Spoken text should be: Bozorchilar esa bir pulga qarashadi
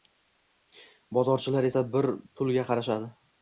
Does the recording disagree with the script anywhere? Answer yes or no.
no